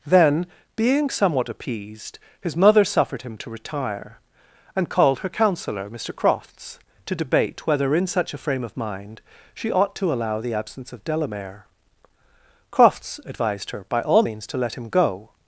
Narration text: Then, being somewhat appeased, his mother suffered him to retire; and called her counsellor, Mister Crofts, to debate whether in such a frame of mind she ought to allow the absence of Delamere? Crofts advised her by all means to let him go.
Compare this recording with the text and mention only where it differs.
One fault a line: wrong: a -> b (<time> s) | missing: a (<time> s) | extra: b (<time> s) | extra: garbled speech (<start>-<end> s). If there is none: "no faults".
no faults